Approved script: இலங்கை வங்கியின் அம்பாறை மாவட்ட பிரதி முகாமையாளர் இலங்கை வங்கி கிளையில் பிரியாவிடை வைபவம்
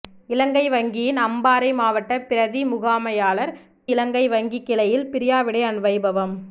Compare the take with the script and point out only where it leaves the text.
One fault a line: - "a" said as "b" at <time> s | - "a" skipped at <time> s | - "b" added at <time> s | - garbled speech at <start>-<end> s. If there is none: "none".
none